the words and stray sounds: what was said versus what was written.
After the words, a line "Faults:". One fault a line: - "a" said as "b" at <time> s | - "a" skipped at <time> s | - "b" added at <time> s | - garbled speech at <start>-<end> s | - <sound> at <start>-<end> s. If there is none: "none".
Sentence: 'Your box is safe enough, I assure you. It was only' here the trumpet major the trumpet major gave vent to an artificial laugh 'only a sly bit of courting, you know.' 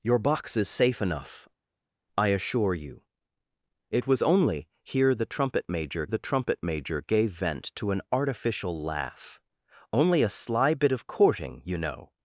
'Your box is safe enough, I assure you. It was only' here the trumpet major the trumpet major gave vent to an artificial laugh 'only a sly bit of courting, you know.'
Faults:
none